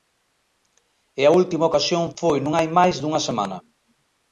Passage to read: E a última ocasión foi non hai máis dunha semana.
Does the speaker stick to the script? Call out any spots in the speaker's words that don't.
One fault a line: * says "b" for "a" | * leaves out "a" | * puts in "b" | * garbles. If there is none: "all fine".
all fine